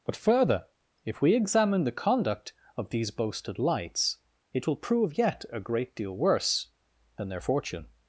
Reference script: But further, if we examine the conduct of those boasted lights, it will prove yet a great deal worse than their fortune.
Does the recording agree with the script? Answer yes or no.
no